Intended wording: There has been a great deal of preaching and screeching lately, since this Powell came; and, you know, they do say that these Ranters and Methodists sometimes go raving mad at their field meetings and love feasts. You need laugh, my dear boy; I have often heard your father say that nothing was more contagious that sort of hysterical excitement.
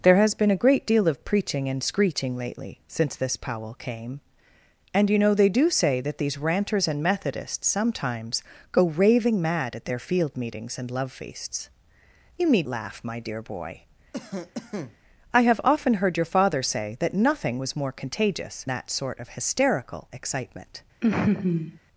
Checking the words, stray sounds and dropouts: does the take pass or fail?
fail